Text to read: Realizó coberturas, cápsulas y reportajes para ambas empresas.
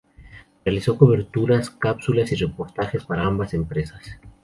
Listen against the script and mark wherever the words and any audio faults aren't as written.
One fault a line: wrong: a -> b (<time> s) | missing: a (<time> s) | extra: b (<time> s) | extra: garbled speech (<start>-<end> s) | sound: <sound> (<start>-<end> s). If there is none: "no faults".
no faults